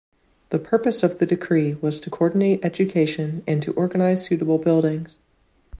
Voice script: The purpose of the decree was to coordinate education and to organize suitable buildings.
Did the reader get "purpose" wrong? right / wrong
right